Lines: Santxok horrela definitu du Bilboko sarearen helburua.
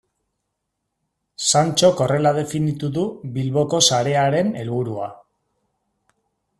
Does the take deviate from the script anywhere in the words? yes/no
no